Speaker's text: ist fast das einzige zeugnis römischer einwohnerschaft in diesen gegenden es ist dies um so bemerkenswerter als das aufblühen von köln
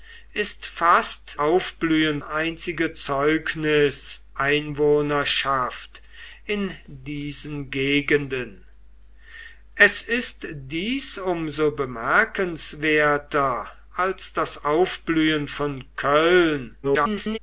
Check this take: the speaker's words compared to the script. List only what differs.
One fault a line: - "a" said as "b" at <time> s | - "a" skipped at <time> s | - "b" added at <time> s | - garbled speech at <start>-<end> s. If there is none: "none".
- "das" said as "aufblühen" at 1.4 s
- "römischer" skipped at 4.2 s
- garbled speech at 16.8-17.4 s